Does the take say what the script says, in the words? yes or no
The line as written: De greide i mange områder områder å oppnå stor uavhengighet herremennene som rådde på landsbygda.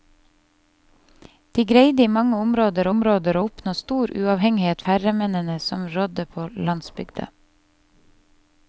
yes